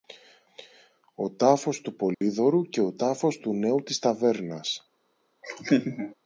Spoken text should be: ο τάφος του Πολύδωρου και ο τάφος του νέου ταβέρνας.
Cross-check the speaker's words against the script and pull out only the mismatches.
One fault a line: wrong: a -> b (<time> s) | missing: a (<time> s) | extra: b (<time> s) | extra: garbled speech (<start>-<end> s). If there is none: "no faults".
extra: της (3.8 s)